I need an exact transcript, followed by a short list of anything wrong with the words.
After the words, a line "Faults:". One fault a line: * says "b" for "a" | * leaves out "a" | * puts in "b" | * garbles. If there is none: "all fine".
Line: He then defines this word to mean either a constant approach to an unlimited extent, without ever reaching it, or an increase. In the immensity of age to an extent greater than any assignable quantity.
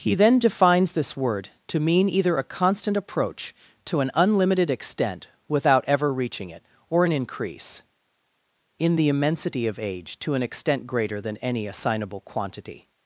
He then defines this word to mean either a constant approach to an unlimited extent, without ever reaching it, or an increase. In the immensity of age to an extent greater than any assignable quantity.
Faults:
all fine